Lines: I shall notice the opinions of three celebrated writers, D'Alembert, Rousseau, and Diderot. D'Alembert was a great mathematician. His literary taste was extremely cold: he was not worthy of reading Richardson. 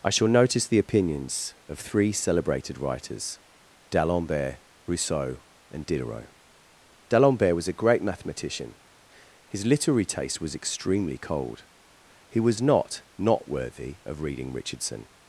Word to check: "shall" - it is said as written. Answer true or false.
true